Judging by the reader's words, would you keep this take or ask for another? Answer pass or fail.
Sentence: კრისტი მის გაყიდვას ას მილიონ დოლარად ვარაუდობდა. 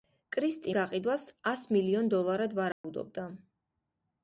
fail